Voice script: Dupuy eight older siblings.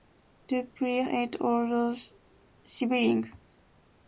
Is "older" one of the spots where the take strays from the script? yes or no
no